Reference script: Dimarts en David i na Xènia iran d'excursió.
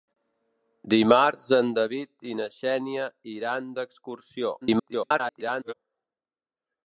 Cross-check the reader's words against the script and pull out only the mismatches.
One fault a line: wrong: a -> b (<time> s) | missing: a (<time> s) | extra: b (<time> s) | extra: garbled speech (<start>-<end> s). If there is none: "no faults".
extra: garbled speech (4.6-5.7 s)